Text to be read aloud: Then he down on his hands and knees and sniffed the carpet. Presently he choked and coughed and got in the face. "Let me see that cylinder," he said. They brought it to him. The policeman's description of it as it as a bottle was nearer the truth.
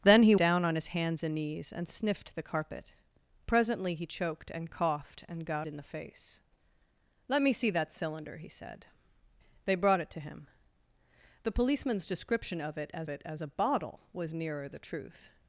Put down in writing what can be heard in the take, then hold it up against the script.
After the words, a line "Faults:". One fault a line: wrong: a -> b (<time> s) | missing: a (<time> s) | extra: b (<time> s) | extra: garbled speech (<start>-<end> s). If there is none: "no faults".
Then he down on his hands and knees and sniffed the carpet. Presently he choked and coughed and got in the face. "Let me see that cylinder," he said. They brought it to him. The policeman's description of it as it as a bottle was nearer the truth.
Faults:
no faults